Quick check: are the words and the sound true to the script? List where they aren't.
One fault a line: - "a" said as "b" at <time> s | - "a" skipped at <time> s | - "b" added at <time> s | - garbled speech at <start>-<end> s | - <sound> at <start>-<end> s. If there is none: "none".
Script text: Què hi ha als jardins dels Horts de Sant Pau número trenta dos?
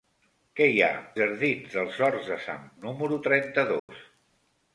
- "als" skipped at 0.9 s
- "Pau" skipped at 2.7 s
- dropout at 3.8-3.9 s